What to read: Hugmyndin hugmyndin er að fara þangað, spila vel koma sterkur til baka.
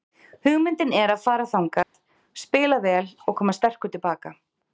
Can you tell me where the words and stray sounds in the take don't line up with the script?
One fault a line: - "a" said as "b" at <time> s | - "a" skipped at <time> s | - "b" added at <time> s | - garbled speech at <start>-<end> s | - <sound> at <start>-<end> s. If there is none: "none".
- "hugmyndin" skipped at 0.9 s
- dropout at 1.8-1.9 s
- "og" added at 3.3 s